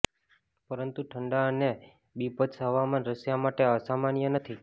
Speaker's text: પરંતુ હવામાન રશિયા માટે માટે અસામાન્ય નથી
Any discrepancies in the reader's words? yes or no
yes